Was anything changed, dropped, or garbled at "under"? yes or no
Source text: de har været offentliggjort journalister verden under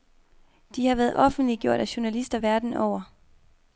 yes